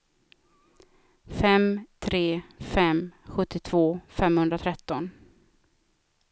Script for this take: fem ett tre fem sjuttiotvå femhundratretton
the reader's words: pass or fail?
fail